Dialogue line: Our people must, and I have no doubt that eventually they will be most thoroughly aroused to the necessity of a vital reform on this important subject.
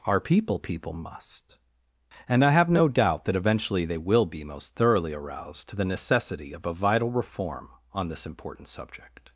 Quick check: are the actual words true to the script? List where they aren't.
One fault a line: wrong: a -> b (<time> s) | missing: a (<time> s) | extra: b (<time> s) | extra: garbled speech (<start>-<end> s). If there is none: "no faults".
extra: people (0.6 s)